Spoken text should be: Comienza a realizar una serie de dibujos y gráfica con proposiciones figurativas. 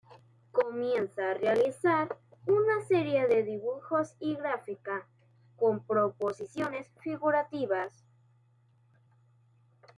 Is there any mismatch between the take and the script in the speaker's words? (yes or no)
no